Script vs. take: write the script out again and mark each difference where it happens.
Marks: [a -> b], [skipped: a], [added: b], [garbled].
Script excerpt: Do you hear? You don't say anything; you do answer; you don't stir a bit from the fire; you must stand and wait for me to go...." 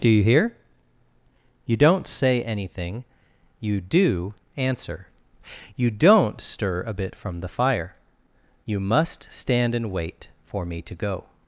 Do you hear? You don't say anything; you do answer; you don't stir a bit from the fire; you must stand and wait for me to go...."